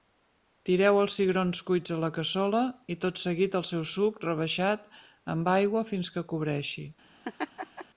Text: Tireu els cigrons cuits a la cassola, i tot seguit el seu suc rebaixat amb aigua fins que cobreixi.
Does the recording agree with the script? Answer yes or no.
yes